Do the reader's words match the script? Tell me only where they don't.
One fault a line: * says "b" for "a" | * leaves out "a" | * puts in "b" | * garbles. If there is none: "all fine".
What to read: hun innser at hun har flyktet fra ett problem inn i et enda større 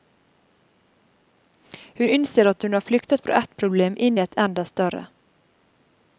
all fine